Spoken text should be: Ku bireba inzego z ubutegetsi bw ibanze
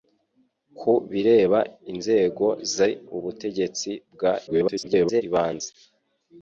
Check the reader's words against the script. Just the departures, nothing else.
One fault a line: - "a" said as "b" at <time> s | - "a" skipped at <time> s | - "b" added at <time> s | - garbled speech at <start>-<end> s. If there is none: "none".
- garbled speech at 4.5-5.2 s